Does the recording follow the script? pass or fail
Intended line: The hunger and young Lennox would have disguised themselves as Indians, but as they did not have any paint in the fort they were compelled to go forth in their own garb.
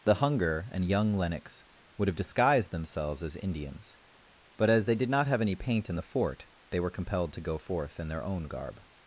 pass